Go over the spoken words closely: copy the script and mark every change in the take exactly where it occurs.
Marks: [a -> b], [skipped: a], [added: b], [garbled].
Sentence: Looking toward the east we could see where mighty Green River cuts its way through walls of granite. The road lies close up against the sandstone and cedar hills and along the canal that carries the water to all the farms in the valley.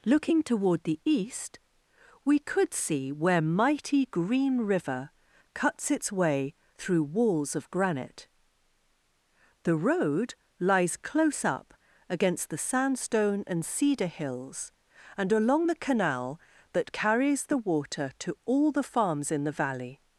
Looking toward the east we could see where mighty Green River cuts its way through walls of granite. The road lies close up against the sandstone and cedar hills and along the canal that carries the water to all the farms in the valley.